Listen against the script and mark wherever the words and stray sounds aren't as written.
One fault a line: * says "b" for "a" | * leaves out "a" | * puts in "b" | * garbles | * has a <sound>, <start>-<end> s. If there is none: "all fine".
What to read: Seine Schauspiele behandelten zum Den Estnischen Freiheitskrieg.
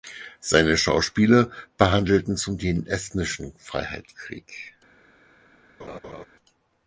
* has a laugh, 5.8-6.3 s